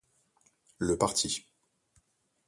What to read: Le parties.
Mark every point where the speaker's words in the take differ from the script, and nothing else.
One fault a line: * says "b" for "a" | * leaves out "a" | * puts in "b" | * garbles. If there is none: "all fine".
all fine